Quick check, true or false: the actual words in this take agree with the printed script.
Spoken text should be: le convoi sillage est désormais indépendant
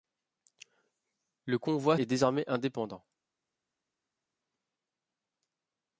false